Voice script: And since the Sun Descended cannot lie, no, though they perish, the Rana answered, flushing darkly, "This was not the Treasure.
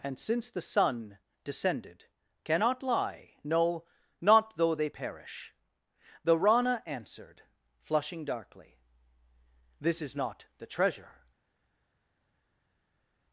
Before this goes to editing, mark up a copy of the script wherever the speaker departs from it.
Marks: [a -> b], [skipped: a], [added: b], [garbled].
And since the Sun Descended cannot lie, no, [added: not] though they perish, the Rana answered, flushing darkly, "This [was -> is] not the Treasure.